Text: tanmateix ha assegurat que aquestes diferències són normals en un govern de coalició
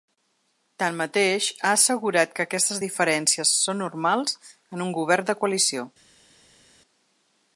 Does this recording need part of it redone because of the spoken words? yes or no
no